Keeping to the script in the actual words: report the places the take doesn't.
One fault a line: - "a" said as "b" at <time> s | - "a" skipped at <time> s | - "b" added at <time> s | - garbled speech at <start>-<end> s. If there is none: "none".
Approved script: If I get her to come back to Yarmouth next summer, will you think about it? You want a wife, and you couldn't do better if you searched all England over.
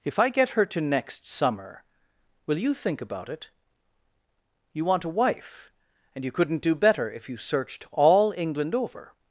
- "come back to Yarmouth" skipped at 0.8 s